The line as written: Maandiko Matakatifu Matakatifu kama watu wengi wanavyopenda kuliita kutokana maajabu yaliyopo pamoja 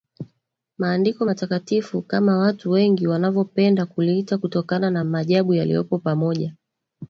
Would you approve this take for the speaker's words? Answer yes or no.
no